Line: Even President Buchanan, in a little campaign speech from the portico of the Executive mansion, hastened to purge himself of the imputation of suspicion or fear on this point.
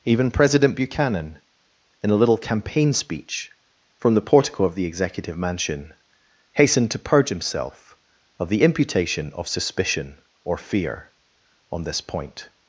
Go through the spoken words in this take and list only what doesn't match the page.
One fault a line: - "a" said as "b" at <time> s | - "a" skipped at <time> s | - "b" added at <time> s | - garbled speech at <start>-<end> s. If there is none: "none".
none